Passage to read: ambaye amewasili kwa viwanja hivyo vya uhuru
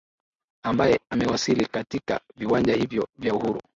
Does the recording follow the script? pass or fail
fail